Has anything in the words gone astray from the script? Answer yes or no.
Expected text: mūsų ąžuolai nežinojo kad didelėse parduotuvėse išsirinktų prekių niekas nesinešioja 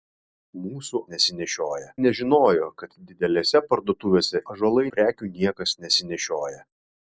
yes